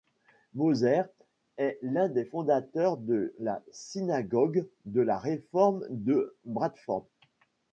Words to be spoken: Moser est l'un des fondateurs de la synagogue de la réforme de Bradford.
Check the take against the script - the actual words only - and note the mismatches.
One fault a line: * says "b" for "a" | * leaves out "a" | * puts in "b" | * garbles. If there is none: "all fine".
all fine